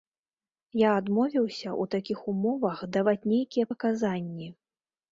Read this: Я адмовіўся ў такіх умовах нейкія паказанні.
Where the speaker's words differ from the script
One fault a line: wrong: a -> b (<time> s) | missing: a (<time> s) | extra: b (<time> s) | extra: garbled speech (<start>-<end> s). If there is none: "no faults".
extra: даваць (3.0 s)